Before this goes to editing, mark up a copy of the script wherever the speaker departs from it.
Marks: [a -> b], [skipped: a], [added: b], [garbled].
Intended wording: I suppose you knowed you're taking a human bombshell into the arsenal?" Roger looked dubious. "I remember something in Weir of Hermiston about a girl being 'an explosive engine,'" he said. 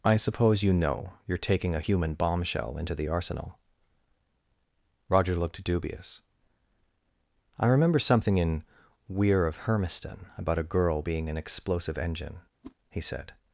I suppose you [knowed -> know] you're taking a human bombshell into the arsenal?" Roger looked dubious. "I remember something in Weir of Hermiston about a girl being 'an explosive engine,'" he said.